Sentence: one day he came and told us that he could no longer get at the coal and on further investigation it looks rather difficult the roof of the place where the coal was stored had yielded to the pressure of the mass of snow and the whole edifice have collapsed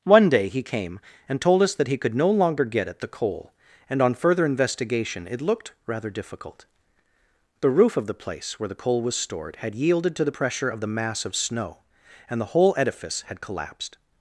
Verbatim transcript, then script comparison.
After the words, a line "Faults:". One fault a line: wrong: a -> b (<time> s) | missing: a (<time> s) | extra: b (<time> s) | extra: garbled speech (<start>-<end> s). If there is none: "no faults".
one day he came and told us that he could no longer get at the coal and on further investigation it looked rather difficult the roof of the place where the coal was stored had yielded to the pressure of the mass of snow and the whole edifice had collapsed
Faults:
wrong: looks -> looked (5.4 s)
wrong: have -> had (13.2 s)